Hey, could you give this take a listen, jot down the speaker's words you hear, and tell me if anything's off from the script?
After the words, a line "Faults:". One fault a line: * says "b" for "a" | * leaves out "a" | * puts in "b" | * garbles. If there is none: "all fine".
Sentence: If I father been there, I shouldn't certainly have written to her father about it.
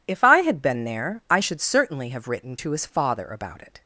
If I had been there, I should certainly have written to his father about it.
Faults:
* says "had" for "father"
* says "should" for "shouldn't"
* says "his" for "her"